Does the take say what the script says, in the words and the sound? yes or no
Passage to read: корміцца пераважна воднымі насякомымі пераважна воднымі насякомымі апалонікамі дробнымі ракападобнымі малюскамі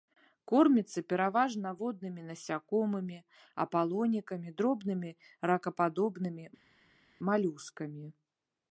no